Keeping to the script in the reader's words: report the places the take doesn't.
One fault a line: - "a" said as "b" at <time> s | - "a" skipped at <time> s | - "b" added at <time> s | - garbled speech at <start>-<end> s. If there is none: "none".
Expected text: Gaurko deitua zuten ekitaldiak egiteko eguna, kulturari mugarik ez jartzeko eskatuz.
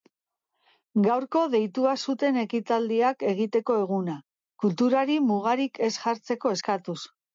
none